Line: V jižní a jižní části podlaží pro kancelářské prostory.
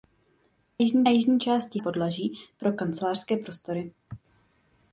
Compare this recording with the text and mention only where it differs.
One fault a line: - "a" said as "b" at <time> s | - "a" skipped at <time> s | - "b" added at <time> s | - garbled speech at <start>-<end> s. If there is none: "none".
none